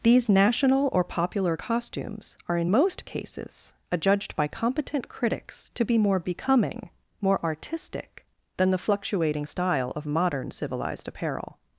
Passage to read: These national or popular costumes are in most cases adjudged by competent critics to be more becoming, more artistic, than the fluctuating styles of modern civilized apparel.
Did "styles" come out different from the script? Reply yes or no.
yes